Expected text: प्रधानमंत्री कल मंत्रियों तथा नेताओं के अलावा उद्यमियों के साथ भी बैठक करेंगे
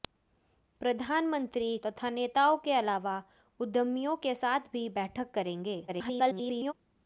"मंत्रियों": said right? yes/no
no